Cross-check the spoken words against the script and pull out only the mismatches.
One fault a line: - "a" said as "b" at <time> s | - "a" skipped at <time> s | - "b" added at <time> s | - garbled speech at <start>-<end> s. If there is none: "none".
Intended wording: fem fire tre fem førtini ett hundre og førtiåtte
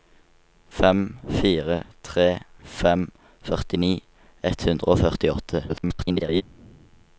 - garbled speech at 5.7-6.4 s